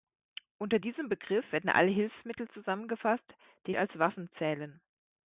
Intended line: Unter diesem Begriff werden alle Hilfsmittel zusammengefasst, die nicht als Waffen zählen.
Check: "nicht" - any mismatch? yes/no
yes